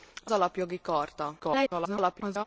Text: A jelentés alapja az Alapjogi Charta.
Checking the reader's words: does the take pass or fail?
fail